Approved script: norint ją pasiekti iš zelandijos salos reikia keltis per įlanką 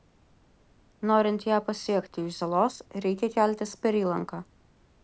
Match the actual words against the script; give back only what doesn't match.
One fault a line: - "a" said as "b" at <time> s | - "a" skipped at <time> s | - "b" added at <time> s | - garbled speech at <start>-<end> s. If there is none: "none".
- "zelandijos" skipped at 2.4 s